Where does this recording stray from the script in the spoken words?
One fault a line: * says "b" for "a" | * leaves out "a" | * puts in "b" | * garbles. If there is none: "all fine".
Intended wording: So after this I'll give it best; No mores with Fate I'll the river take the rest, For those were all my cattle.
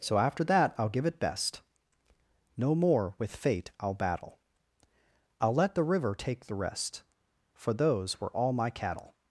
* says "that" for "this"
* says "more" for "mores"
* puts in "battle I'll let"